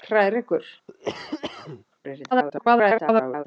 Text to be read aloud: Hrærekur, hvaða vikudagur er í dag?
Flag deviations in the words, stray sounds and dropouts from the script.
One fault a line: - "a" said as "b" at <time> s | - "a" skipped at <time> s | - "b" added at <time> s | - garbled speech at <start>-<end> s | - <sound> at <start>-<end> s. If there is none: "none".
- "hvaða vikudagur" skipped at 0.7 s
- cough at 0.9-1.8 s
- garbled speech at 2.3-3.4 s